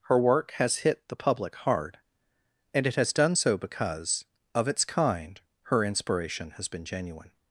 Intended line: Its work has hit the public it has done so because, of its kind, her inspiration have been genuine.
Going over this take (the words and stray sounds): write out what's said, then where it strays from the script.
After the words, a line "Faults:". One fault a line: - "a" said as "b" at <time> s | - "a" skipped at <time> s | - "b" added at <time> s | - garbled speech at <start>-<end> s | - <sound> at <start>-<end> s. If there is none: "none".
Her work has hit the public hard, and it has done so because, of its kind, her inspiration has been genuine.
Faults:
- "Its" said as "Her" at 0.0 s
- "hard and" added at 1.6 s
- "have" said as "has" at 6.5 s